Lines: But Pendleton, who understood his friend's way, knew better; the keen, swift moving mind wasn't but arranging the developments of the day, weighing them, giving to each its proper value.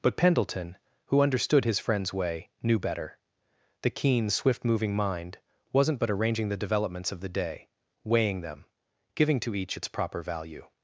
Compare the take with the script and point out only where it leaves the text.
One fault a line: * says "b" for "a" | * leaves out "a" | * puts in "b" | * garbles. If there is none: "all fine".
all fine